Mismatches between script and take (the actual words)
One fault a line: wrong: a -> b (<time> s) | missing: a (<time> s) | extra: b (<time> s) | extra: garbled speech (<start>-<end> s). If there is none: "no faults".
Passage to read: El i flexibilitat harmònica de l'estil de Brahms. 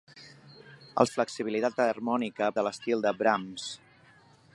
no faults